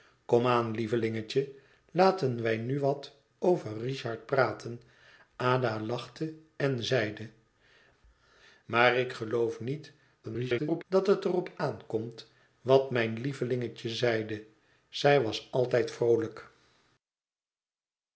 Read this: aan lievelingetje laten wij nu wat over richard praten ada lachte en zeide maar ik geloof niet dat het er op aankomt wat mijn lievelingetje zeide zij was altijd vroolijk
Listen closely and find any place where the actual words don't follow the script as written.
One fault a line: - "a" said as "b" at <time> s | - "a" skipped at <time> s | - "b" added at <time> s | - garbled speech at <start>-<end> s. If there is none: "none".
- garbled speech at 10.2-10.8 s